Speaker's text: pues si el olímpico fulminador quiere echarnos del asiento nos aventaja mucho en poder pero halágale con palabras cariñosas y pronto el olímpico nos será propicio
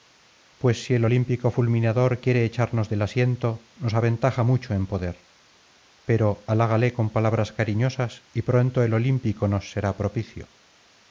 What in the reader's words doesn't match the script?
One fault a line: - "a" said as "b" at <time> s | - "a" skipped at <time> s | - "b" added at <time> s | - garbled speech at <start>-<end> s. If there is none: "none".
none